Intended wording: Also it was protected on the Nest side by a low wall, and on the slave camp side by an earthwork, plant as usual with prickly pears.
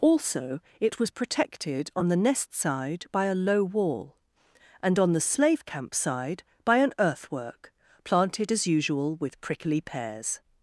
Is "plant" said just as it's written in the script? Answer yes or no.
no